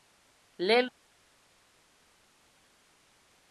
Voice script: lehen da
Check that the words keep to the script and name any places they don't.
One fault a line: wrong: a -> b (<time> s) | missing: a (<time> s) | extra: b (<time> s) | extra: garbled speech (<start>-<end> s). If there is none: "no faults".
no faults